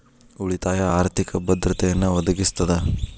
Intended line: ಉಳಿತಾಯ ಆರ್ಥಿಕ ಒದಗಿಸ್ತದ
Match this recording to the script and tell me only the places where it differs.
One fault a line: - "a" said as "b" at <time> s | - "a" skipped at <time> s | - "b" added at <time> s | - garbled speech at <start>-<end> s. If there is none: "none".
- "ಭದ್ರತೆಯನ್ನ" added at 1.4 s